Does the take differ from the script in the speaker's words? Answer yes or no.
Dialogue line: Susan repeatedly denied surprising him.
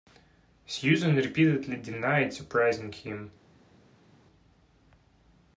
no